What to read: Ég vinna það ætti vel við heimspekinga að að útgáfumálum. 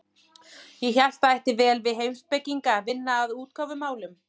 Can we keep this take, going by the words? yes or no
no